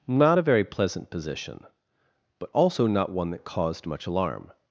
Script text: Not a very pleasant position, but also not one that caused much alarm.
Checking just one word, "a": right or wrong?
right